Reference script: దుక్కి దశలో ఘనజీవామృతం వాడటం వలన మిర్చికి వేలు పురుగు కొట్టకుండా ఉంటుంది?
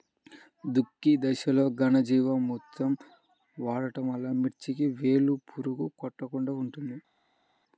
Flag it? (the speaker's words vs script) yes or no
no